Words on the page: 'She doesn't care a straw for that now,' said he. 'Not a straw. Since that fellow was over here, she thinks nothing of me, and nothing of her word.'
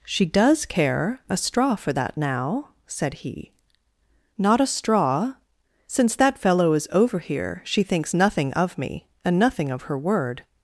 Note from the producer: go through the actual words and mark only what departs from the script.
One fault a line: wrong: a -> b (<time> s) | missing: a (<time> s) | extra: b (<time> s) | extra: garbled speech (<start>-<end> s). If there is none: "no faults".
wrong: doesn't -> does (0.2 s)
wrong: was -> is (6.7 s)